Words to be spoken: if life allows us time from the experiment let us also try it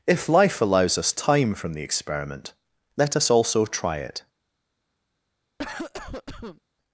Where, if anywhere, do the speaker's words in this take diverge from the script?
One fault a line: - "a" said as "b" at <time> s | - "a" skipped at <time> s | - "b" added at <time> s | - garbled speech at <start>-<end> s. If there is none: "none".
none